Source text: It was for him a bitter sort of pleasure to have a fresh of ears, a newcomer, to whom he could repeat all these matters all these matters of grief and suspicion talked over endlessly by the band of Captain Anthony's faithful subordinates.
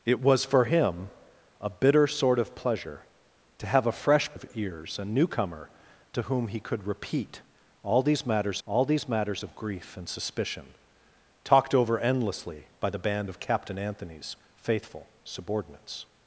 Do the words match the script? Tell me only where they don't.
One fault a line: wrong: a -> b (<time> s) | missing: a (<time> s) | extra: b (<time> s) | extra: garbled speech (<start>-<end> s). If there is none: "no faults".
no faults